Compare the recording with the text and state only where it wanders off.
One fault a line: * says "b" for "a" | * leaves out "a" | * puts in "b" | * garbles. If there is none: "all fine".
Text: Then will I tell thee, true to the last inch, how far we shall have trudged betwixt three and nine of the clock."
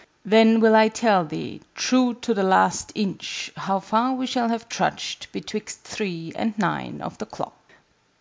all fine